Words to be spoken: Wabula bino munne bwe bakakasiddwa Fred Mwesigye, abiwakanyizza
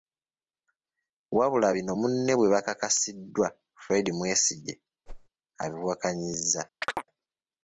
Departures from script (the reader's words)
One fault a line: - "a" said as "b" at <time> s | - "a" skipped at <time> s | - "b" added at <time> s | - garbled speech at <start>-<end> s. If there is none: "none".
none